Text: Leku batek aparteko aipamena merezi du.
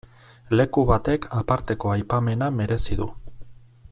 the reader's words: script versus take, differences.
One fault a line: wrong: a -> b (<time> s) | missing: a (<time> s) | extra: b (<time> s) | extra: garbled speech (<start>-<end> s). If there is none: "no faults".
no faults